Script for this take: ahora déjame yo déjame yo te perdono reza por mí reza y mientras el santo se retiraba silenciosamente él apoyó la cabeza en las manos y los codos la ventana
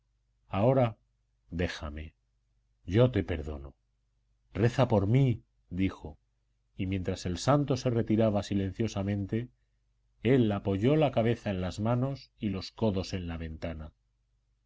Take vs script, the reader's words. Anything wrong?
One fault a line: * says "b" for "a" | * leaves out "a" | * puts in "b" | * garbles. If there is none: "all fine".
* leaves out "déjame yo"
* says "dijo" for "reza"
* puts in "en"